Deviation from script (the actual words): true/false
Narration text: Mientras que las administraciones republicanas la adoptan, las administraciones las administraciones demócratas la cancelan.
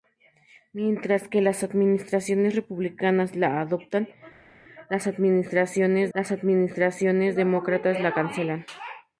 false